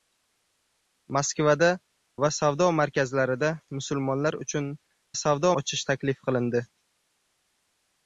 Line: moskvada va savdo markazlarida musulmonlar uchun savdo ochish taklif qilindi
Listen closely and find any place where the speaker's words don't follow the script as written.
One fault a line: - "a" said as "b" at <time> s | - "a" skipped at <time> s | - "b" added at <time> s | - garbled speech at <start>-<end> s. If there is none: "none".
none